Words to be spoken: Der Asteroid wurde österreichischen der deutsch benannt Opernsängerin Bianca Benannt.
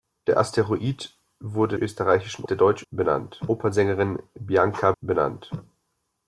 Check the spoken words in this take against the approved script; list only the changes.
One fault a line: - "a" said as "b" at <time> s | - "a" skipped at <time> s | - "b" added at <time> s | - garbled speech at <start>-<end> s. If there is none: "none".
none